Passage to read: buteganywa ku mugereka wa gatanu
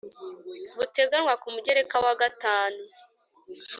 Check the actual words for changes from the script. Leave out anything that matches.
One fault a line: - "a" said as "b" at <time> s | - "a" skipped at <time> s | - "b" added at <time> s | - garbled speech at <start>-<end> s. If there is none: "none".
none